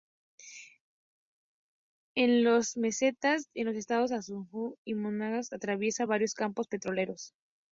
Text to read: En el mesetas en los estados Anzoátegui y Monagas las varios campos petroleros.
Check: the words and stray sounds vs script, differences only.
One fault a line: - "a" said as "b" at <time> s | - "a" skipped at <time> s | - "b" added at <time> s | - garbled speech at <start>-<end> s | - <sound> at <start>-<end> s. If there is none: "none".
- "el" said as "las" at 2.4 s
- "las" said as "atraviesa" at 5.5 s